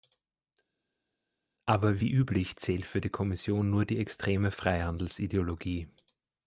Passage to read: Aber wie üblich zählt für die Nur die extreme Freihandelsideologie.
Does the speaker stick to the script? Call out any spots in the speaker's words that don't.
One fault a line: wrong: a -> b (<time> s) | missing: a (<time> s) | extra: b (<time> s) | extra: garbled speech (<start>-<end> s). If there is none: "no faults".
extra: Kommission (3.1 s)